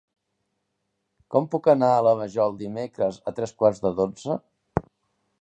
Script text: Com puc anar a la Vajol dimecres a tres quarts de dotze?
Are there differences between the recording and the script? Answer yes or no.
no